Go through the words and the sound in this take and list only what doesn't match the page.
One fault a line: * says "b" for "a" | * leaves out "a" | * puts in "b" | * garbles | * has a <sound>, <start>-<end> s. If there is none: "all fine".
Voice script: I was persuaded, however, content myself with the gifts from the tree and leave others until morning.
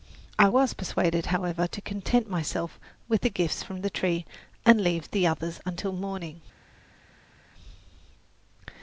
* puts in "to"
* puts in "the"